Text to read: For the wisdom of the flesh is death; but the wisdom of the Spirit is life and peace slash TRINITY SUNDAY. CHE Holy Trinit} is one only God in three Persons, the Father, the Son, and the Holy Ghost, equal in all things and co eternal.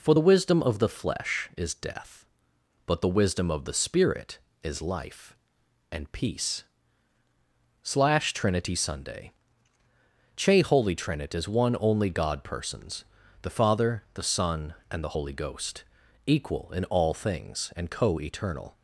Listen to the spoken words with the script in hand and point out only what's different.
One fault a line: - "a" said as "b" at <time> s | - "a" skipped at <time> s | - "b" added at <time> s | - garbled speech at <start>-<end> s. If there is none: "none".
- "in three" skipped at 12.4 s